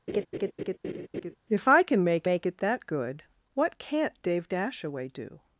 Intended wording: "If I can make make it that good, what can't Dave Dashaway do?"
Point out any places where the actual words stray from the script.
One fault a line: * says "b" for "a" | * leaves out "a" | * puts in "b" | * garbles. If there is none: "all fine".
all fine